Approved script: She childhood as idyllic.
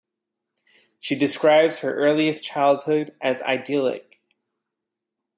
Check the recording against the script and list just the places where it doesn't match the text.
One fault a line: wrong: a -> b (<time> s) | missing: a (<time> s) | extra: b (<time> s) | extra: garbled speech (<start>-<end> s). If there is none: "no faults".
extra: describes her earliest (1.1 s)